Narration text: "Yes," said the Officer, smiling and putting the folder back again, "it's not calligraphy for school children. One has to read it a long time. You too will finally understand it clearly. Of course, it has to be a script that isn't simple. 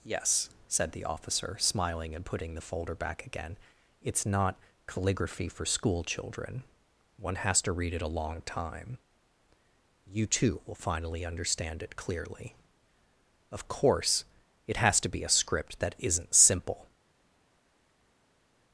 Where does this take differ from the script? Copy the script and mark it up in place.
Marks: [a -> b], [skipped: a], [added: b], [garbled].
"Yes," said the Officer, smiling and putting the folder back again, "it's not calligraphy for school children. One has to read it a long time. You too will finally understand it clearly. Of course, it has to be a script that isn't simple.